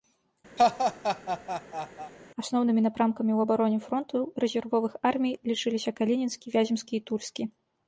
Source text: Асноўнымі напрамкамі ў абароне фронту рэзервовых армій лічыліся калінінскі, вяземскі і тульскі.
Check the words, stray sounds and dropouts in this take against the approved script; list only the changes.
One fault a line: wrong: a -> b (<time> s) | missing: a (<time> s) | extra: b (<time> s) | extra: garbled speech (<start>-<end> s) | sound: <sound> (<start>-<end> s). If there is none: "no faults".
sound: laugh (0.6-2.1 s)